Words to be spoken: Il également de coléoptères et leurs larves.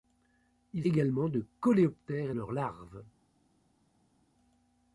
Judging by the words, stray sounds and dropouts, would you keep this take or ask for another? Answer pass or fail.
pass